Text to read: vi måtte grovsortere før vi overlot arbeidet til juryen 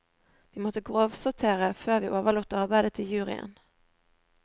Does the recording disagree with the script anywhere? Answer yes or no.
no